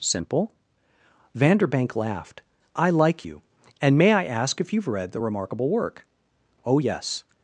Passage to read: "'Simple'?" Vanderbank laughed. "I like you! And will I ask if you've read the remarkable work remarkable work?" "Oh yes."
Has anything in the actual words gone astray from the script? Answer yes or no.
yes